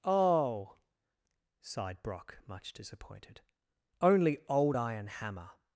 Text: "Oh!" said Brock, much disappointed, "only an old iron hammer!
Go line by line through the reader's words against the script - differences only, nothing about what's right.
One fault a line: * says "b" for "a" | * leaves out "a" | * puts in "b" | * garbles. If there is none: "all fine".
* says "sighed" for "said"
* leaves out "an"